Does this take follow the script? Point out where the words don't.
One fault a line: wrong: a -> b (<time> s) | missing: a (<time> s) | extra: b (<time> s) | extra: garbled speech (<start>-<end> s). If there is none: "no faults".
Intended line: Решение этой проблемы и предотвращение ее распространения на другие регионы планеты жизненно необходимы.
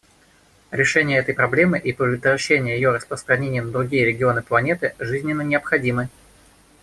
no faults